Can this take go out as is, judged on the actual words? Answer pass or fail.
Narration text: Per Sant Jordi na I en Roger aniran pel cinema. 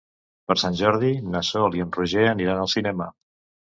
fail